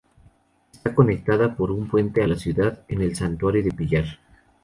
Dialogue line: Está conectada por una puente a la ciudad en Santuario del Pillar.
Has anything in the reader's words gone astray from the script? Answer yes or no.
yes